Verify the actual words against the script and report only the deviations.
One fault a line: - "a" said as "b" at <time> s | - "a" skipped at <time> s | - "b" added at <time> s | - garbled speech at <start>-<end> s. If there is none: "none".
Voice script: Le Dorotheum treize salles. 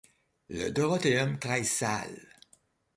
none